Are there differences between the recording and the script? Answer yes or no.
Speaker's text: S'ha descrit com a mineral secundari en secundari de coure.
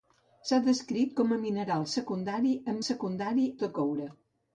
no